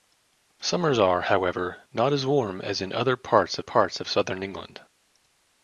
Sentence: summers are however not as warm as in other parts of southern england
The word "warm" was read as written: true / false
true